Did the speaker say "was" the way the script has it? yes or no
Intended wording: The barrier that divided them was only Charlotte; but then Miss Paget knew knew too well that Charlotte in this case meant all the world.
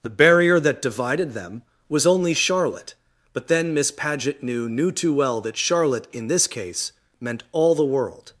yes